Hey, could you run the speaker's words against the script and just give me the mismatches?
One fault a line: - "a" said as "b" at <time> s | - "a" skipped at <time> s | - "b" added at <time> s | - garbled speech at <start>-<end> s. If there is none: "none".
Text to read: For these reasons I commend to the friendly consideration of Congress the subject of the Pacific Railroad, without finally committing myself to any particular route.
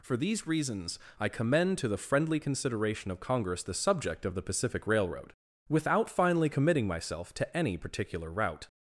none